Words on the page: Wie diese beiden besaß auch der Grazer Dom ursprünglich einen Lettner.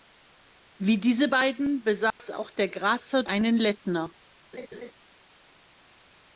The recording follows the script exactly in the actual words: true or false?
false